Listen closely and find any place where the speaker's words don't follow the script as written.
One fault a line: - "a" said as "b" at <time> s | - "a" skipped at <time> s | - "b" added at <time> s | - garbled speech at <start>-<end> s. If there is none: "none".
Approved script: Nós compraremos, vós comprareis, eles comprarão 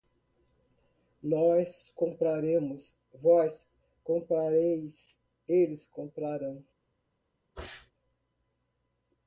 none